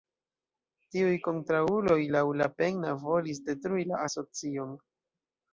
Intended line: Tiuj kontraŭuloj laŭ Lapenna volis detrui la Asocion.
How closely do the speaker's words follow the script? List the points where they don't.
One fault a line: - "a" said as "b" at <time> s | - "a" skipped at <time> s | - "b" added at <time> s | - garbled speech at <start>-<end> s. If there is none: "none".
none